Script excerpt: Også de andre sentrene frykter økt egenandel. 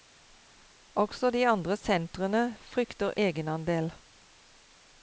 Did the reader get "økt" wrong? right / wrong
wrong